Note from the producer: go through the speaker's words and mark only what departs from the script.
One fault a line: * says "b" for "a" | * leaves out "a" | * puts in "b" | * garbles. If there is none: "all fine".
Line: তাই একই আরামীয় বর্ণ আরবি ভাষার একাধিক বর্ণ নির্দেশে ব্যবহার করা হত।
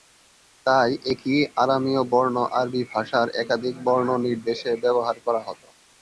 all fine